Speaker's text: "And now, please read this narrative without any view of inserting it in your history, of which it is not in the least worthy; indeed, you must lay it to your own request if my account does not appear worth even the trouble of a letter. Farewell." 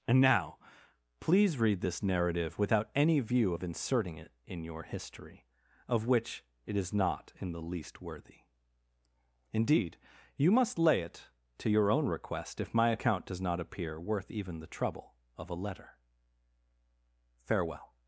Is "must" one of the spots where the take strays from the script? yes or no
no